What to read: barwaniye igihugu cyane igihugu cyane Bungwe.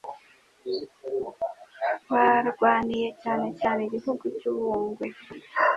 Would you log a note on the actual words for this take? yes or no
yes